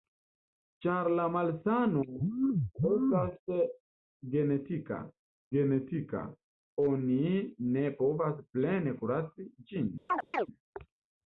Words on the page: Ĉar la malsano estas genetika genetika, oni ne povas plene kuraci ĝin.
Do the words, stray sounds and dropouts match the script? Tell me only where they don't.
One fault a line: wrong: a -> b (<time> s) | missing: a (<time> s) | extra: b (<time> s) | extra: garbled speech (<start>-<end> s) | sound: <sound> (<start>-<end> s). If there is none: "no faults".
sound: chirp (10.1-10.5 s)